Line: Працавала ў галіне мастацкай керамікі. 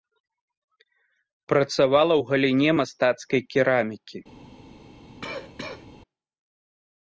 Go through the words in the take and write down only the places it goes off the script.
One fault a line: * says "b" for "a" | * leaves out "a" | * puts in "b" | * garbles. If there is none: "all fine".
all fine